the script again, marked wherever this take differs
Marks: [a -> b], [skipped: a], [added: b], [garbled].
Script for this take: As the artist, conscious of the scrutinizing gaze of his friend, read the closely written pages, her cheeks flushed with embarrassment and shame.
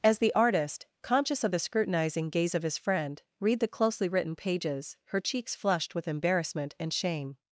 As the artist, conscious of the scrutinizing gaze of his friend, read the closely written pages, her cheeks flushed with embarrassment and shame.